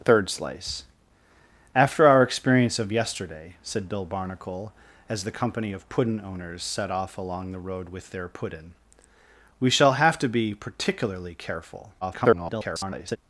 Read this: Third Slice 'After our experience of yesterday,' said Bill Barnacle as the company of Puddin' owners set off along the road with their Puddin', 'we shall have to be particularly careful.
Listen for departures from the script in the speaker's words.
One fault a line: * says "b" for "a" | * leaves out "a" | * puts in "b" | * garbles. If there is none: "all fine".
* garbles